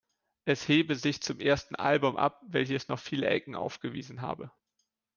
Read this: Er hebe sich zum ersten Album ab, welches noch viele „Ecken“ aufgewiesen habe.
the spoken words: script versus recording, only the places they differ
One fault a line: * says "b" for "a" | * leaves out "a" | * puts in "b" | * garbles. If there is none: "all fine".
* says "Es" for "Er"